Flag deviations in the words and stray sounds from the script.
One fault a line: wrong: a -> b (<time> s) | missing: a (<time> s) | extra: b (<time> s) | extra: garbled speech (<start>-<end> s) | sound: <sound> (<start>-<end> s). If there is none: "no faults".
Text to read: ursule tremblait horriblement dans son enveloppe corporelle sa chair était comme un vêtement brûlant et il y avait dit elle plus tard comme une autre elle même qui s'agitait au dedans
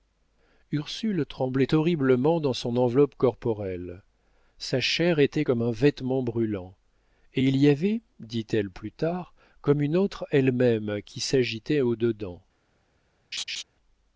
sound: laugh (13.3-13.6 s)